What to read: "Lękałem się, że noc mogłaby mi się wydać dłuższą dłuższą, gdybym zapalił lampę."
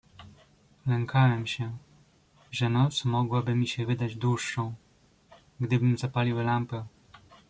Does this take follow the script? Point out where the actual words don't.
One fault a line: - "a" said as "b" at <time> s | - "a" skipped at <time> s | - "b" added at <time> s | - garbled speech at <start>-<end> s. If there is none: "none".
- "dłuższą" skipped at 4.7 s